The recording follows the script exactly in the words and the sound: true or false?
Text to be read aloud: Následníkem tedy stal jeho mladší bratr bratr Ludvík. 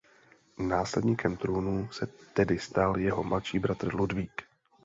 false